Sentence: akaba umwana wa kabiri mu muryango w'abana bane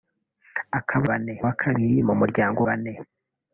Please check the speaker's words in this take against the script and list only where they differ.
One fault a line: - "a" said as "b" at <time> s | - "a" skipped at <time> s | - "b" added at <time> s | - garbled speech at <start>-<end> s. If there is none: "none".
- "umwana" said as "bane" at 1.1 s
- "w'abana" skipped at 2.6 s